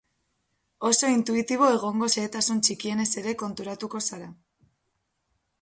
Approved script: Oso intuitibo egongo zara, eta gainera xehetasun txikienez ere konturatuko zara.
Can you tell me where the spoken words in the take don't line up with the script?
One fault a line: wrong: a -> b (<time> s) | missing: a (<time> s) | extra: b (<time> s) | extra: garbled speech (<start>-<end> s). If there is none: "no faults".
missing: zara eta gainera (2.1 s)